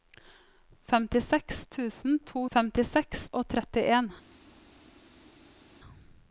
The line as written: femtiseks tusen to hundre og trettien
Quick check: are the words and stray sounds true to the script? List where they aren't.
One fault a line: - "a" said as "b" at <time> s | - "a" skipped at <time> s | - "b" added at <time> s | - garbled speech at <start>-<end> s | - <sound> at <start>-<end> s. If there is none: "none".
- "hundre" said as "femtiseks" at 2.5 s